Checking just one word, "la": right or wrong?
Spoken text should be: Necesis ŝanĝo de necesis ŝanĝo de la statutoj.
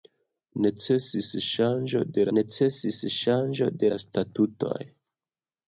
right